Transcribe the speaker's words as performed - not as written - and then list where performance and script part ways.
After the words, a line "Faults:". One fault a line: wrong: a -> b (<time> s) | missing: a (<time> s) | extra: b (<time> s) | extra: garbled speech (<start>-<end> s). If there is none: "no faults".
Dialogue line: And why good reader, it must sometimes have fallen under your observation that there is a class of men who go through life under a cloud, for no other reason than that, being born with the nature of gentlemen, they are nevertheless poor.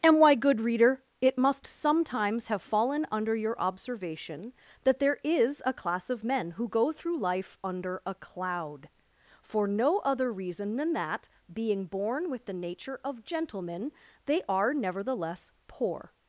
And why good reader, it must sometimes have fallen under your observation that there is a class of men who go through life under a cloud, for no other reason than that, being born with the nature of gentlemen, they are nevertheless poor.
Faults:
no faults